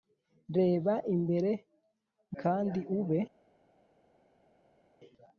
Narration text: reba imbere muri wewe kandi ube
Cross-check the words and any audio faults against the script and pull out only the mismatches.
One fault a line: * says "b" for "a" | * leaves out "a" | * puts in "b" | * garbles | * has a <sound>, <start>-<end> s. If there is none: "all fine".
* leaves out "muri wewe"